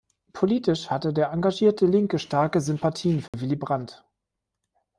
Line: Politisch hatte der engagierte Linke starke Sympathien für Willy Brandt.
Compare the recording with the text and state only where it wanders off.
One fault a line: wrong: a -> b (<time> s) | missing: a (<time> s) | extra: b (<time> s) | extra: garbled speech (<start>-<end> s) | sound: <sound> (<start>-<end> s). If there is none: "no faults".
sound: dropout (3.3-3.3 s)